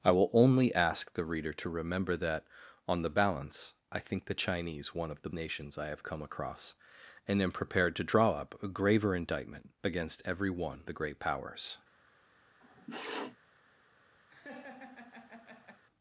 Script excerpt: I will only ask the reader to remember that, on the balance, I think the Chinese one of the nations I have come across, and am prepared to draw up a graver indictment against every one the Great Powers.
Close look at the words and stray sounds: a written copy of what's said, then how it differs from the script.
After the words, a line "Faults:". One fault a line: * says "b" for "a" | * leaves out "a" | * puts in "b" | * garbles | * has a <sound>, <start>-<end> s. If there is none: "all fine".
I will only ask the reader to remember that, on the balance, I think the Chinese one of the nations I have come across, and am prepared to draw up a graver indictment against every one the Great Powers.
Faults:
* has a sniff, 12.6-13.4 s
* has a laugh, 14.3-15.8 s